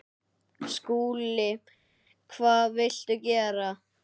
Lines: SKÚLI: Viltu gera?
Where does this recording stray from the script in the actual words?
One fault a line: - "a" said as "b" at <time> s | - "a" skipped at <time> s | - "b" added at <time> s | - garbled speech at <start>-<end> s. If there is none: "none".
- "Hvað" added at 2.4 s